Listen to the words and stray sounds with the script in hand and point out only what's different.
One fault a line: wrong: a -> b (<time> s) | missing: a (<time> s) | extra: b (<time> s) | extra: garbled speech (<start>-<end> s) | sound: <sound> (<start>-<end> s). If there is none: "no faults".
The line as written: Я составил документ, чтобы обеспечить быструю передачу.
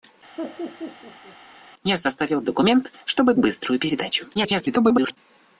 sound: laugh (0.4-1.4 s)
missing: обеспечить (3.3 s)
extra: garbled speech (4.3-5.2 s)